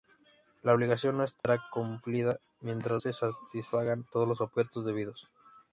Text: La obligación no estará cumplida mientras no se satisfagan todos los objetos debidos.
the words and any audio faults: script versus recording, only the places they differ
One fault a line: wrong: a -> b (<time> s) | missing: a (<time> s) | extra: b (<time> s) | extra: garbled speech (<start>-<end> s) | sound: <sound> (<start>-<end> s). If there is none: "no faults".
sound: dropout (1.4-1.4 s)
missing: no (3.0 s)